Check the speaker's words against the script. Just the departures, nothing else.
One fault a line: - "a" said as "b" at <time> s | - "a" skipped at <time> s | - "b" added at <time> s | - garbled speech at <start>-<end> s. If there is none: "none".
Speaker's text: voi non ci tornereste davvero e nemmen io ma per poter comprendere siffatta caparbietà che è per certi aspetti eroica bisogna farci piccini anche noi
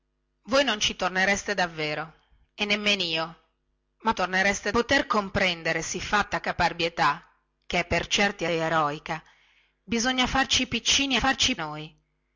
- "per" said as "tornereste" at 4.1 s
- "aspetti" skipped at 8.5 s
- "anche" said as "farci" at 11.2 s